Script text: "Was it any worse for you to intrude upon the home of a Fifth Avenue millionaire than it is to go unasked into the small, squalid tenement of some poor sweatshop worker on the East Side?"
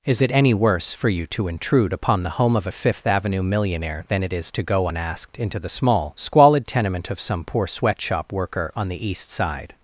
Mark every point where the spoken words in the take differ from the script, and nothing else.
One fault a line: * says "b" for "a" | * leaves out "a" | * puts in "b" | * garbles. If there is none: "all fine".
* says "Is" for "Was"